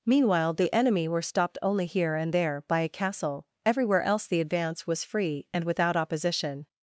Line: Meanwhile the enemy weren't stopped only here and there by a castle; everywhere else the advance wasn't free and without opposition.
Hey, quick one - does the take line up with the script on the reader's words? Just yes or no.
no